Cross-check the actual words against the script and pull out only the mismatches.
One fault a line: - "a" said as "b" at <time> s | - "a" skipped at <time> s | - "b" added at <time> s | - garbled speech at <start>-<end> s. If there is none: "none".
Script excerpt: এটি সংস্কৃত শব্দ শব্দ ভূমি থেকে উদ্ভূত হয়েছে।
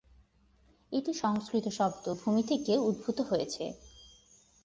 - "শব্দ" skipped at 2.1 s